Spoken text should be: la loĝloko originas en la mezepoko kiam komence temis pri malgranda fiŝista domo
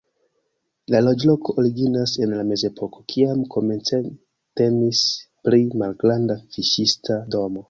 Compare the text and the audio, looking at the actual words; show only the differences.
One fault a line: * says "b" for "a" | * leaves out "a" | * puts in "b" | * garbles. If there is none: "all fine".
all fine